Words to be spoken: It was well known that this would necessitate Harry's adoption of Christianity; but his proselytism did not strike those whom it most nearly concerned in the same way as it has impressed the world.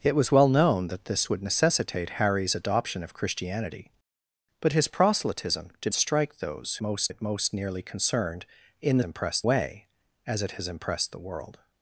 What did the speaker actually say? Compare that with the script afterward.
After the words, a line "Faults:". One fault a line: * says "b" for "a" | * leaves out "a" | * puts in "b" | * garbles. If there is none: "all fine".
It was well known that this would necessitate Harry's adoption of Christianity; but his proselytism did strike those most it most nearly concerned in the impressed way as it has impressed the world.
Faults:
* leaves out "not"
* says "most" for "whom"
* says "impressed" for "same"